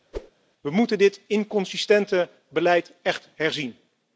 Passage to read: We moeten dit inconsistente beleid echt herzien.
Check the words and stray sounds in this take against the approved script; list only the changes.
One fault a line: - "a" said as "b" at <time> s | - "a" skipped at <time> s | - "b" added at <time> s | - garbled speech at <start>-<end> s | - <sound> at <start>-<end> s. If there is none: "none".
- whoosh at 0.1-0.3 s